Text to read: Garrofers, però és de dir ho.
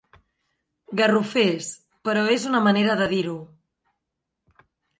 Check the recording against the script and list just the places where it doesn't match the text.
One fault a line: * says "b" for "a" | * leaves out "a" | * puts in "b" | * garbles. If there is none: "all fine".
* puts in "una manera"